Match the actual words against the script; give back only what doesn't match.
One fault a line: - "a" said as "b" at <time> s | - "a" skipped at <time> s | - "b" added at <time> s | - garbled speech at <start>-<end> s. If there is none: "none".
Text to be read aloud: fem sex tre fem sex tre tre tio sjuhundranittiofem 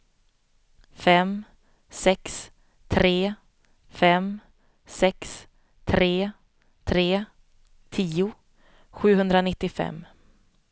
none